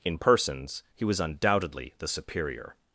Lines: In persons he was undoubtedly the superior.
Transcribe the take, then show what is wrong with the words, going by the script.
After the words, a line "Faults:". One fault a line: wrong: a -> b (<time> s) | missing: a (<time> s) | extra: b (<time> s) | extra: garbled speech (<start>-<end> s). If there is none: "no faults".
In persons he was undoubtedly the superior.
Faults:
no faults